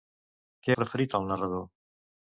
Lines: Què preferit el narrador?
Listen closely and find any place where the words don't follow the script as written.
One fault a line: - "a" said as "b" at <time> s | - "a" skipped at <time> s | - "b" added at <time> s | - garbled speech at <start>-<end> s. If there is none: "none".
none